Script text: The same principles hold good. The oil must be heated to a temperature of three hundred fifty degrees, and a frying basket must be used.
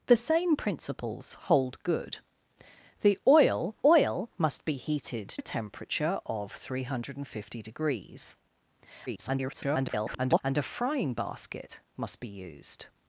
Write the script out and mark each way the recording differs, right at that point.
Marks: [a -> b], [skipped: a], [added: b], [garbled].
The same principles hold good. The oil [added: oil] must be heated [skipped: to] a temperature of three hundred fifty degrees, [garbled] and a frying basket must be used.